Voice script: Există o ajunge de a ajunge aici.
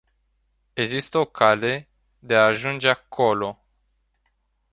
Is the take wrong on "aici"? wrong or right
wrong